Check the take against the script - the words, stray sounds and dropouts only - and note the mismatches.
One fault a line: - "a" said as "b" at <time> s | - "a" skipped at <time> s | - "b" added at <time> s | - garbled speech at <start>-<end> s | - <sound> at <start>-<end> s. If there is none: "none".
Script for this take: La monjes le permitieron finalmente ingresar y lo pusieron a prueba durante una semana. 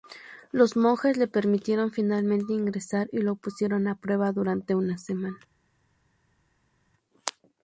- "La" said as "Los" at 0.5 s